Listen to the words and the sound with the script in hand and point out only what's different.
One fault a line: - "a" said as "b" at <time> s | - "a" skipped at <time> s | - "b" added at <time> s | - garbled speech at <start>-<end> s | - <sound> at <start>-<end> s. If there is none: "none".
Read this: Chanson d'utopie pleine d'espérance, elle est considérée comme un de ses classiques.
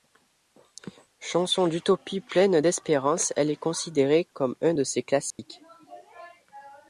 - dropout at 5.3-5.4 s